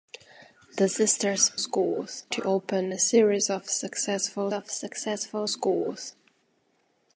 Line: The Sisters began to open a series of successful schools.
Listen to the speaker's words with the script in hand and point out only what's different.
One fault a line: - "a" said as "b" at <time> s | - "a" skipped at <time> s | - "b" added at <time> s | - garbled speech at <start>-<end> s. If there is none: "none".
- "began" said as "schools" at 1.6 s
- "of successful" added at 4.5 s